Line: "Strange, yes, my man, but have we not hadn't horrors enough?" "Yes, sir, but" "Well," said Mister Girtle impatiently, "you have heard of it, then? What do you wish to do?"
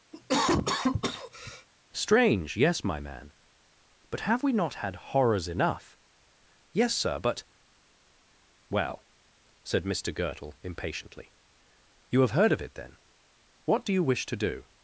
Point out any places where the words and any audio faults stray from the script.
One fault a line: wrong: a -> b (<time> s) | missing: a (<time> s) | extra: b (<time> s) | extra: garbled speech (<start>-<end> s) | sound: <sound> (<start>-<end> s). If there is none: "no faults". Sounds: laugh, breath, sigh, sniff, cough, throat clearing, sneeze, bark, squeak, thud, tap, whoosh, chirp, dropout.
sound: cough (0.1-1.7 s)
wrong: hadn't -> had (4.8 s)